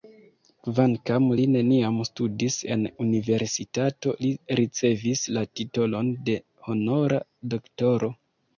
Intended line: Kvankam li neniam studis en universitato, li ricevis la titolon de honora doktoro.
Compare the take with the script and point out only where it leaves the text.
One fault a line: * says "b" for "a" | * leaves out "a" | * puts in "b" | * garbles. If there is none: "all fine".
all fine